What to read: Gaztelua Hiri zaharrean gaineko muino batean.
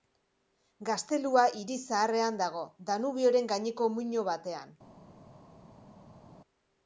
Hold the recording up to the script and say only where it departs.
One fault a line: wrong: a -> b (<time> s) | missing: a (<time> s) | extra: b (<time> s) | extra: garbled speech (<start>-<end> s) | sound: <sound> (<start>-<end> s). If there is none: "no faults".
extra: dago Danubioren (2.4 s)